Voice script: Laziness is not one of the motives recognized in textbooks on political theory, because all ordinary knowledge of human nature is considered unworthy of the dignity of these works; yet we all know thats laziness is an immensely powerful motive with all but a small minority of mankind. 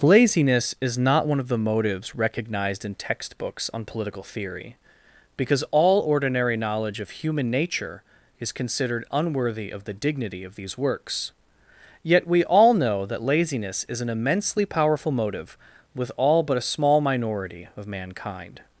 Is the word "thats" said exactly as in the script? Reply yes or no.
no